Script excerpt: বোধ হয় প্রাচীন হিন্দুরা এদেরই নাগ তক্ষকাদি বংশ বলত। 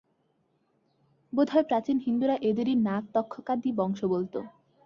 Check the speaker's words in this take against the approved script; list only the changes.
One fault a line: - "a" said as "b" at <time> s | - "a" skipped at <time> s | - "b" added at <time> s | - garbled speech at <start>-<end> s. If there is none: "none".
none